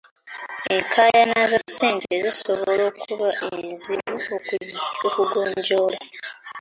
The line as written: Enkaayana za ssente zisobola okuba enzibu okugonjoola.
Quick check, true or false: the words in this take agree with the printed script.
true